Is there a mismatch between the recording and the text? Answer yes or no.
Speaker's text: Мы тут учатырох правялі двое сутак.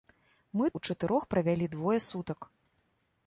yes